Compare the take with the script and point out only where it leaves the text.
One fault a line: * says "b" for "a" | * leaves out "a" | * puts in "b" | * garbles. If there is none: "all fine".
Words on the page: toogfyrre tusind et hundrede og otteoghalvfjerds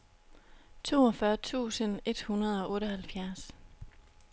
all fine